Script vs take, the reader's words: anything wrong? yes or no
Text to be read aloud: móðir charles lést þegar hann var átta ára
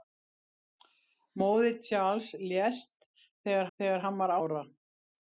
yes